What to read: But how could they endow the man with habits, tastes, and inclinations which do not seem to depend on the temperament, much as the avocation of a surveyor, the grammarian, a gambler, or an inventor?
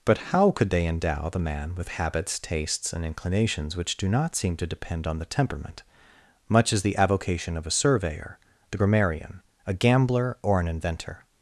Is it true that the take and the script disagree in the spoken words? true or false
false